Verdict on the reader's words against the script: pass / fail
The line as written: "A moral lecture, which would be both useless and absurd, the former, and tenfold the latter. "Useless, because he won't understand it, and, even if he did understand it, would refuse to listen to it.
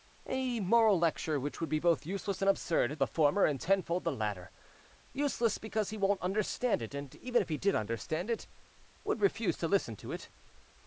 pass